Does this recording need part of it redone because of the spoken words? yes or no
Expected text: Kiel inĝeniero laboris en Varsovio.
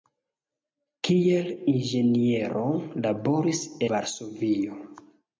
yes